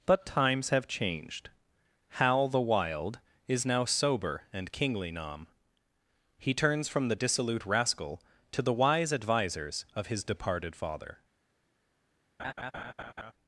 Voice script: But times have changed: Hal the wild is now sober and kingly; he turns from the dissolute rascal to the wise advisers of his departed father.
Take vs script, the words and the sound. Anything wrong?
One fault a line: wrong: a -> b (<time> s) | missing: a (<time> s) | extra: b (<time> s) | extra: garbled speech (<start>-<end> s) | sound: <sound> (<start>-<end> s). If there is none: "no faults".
extra: nom (5.1 s)
sound: laugh (12.4-13.3 s)